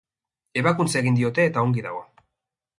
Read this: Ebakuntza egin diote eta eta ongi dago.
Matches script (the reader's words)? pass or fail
fail